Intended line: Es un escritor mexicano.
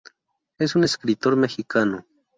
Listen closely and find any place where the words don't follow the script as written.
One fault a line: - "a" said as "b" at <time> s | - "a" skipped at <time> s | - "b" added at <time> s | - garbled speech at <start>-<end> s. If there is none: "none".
none